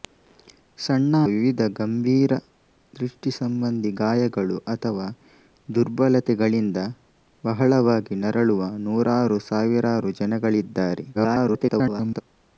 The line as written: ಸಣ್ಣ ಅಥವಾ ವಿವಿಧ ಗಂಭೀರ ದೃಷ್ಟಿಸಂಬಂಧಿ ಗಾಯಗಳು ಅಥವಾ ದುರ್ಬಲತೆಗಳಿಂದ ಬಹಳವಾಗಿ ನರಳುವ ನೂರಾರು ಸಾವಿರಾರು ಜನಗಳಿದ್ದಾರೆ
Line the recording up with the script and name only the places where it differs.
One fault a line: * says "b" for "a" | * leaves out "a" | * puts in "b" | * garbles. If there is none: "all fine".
* leaves out "ಅಥವಾ"
* garbles